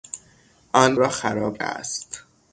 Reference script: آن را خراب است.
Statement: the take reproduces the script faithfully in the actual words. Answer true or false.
true